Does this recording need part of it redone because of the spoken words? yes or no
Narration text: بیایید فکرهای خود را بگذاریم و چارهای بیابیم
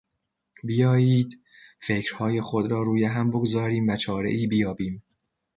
yes